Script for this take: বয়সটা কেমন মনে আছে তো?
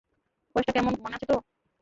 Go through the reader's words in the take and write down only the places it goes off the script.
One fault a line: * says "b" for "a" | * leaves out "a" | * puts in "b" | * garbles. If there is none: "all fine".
all fine